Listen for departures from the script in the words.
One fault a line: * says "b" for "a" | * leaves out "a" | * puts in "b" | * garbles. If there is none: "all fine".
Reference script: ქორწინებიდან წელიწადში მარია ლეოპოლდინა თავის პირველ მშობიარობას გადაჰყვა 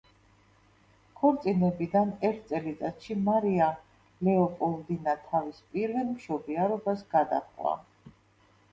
* puts in "ერთ"